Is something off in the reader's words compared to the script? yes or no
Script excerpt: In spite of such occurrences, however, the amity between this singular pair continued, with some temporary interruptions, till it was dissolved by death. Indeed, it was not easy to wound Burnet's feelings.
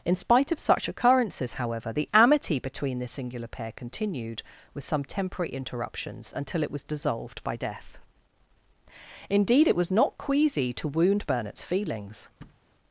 yes